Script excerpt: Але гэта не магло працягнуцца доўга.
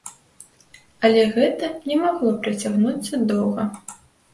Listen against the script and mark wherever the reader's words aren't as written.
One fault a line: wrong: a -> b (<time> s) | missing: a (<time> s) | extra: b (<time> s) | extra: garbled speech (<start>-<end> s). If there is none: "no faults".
no faults